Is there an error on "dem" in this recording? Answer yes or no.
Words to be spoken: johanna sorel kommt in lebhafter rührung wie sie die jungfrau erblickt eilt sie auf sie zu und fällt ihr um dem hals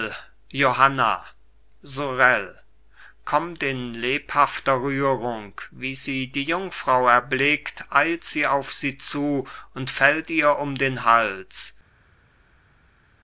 yes